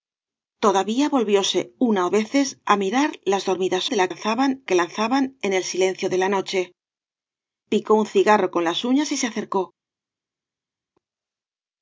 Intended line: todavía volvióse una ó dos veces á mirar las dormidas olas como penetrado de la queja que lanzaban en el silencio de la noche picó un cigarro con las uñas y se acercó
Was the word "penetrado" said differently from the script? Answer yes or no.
yes